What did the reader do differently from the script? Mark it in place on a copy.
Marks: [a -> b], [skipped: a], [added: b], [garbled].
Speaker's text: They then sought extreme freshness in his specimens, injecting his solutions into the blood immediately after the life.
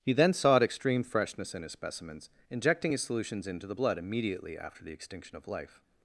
[They -> He] then sought extreme freshness in his specimens, injecting his solutions into the blood immediately after the [added: extinction of] life.